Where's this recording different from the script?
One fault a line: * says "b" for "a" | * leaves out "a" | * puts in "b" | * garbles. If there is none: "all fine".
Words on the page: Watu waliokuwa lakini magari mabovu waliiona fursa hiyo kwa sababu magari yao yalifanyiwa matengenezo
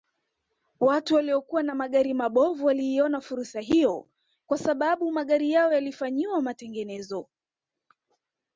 * says "na" for "lakini"